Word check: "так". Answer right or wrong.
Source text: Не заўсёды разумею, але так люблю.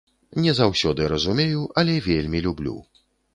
wrong